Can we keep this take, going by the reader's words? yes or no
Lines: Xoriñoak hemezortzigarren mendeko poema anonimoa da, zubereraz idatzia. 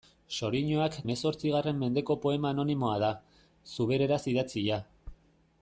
yes